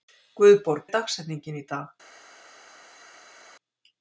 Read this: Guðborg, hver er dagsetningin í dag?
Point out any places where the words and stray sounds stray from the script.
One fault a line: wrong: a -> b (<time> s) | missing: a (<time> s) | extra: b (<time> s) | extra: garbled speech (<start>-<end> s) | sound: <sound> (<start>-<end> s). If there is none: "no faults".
missing: hver (0.9 s)